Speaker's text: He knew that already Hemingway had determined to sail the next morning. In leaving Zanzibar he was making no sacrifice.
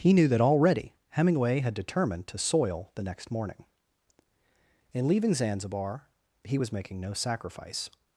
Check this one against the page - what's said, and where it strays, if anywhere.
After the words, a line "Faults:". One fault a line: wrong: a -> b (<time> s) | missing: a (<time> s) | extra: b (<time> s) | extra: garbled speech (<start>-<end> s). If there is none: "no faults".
He knew that already Hemingway had determined to soil the next morning. In leaving Zanzibar he was making no sacrifice.
Faults:
wrong: sail -> soil (2.4 s)